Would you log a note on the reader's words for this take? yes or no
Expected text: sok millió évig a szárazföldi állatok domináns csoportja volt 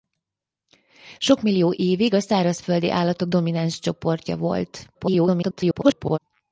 yes